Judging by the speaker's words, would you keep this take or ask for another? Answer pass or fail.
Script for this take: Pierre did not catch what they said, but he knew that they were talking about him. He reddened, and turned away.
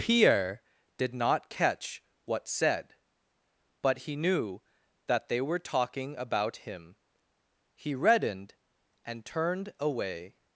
fail